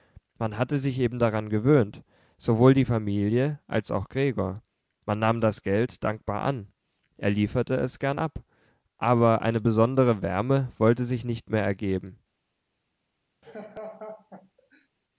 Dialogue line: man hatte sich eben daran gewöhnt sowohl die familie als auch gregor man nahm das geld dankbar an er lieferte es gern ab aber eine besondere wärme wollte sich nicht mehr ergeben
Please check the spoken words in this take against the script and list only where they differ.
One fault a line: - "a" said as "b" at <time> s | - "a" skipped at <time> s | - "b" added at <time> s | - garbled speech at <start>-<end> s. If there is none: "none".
none